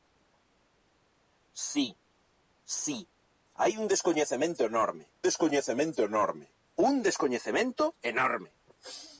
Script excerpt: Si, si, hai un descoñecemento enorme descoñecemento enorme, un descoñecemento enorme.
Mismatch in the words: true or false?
false